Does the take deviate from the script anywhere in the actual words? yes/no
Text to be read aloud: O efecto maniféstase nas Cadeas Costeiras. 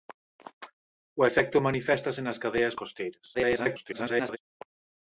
yes